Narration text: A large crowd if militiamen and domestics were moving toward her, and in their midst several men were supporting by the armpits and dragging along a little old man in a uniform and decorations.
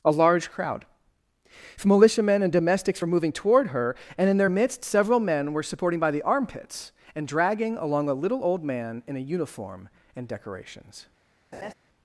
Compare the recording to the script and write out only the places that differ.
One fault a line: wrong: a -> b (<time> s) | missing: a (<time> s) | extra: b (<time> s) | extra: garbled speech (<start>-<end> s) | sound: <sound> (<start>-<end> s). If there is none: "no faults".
sound: laugh (11.5-11.7 s)